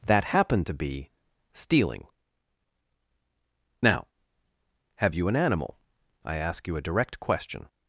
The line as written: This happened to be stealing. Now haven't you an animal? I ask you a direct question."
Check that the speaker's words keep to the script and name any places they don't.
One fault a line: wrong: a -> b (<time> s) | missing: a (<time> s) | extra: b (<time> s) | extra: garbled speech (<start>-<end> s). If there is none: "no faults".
wrong: This -> That (0.1 s)
wrong: haven't -> have (5.0 s)